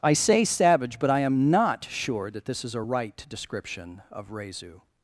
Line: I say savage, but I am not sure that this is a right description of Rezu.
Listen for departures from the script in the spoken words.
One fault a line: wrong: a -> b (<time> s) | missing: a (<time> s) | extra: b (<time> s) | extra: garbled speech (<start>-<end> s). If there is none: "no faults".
no faults